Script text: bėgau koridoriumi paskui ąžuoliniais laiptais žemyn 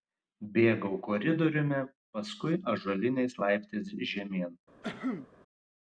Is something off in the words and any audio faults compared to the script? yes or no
yes